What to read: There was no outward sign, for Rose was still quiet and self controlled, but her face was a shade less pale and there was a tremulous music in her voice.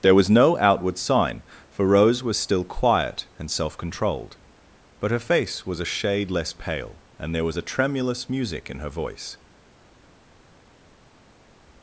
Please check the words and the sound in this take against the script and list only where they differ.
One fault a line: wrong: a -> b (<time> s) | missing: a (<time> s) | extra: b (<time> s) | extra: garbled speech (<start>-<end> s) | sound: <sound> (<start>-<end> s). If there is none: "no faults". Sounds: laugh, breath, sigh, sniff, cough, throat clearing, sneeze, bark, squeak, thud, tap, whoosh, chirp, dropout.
no faults